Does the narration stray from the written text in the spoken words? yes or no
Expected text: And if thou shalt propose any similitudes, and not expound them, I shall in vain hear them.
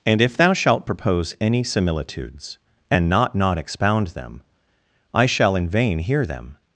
yes